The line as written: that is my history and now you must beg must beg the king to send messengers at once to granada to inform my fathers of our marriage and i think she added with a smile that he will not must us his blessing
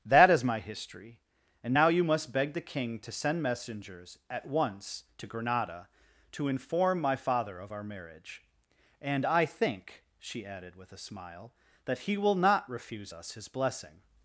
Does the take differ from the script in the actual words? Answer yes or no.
yes